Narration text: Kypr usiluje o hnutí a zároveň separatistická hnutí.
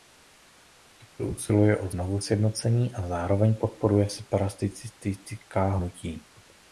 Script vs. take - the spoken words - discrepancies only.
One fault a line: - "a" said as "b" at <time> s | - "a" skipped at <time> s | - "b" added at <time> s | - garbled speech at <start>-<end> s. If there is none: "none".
- "hnutí" said as "znovusjednocení" at 1.9 s
- "podporuje" added at 3.5 s